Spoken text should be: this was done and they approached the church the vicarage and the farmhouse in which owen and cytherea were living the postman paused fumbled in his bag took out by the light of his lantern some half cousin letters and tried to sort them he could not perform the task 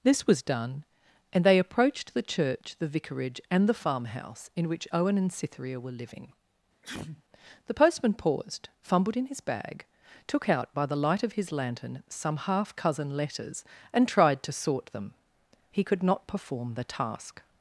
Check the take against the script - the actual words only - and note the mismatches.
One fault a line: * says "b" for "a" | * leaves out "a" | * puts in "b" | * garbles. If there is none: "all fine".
all fine